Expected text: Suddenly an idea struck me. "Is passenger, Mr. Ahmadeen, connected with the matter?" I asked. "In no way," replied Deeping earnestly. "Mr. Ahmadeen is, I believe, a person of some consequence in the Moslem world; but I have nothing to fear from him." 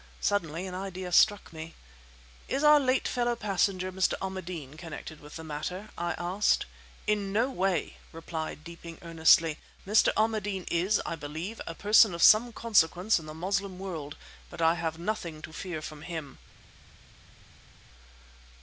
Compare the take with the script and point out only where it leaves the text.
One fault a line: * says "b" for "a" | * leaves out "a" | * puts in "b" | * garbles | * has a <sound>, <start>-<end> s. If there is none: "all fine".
* puts in "our late fellow"